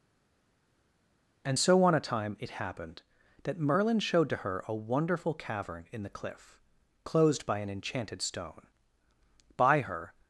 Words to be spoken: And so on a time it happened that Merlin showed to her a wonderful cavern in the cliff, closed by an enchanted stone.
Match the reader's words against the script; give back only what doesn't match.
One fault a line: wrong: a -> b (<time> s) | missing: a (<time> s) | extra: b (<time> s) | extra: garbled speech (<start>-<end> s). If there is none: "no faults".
extra: By her (9.6 s)